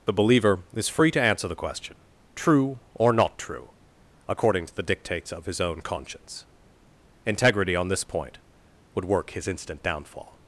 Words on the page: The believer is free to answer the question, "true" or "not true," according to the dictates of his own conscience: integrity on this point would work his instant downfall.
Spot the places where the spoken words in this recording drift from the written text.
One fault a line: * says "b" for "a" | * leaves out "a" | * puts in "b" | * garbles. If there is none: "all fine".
all fine